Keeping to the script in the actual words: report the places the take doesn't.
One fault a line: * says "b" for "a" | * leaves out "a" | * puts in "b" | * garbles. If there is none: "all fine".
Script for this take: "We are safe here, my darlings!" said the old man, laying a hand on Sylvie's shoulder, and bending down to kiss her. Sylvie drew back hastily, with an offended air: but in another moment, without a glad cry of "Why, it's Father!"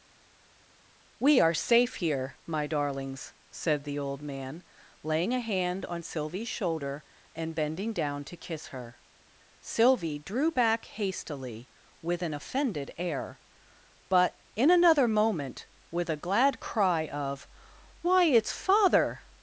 * says "with" for "without"